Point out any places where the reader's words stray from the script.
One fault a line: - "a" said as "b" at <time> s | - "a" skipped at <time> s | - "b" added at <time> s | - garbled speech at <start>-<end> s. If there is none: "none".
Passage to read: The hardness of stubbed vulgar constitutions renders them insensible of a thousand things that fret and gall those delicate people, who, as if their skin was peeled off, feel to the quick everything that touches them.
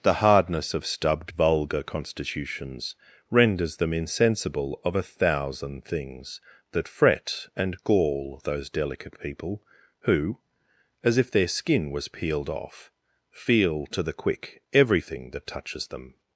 none